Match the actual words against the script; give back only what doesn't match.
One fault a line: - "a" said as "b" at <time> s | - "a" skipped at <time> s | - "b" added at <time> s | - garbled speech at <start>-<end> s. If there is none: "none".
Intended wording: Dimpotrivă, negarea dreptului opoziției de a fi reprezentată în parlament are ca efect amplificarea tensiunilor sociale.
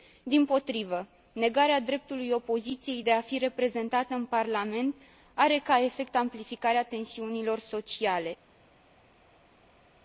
none